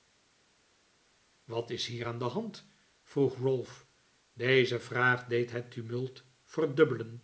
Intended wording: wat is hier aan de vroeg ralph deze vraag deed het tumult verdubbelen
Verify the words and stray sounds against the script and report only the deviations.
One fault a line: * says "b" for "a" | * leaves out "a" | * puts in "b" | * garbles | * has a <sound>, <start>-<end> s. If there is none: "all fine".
* puts in "hand"